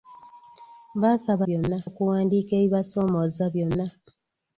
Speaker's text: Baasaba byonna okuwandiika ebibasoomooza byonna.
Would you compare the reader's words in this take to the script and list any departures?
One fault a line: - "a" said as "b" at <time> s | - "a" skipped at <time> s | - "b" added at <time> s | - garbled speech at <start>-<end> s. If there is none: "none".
none